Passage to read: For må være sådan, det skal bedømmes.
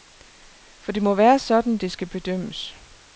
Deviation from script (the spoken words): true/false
true